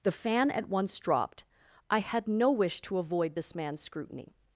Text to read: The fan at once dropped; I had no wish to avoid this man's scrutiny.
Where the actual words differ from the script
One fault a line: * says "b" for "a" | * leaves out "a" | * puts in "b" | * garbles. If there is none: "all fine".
all fine